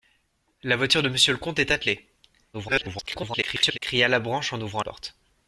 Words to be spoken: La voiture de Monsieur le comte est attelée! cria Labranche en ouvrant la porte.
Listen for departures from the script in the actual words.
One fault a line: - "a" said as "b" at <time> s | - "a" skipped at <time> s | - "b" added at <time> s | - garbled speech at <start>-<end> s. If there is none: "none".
- garbled speech at 2.5-3.8 s
- "la" skipped at 4.8 s